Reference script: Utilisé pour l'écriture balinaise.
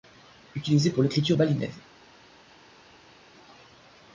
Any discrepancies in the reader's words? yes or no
no